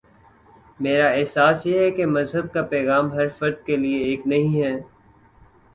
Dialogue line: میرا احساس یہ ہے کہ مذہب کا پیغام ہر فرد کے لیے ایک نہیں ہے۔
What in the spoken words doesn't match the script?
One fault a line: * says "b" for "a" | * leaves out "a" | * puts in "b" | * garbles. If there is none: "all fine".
all fine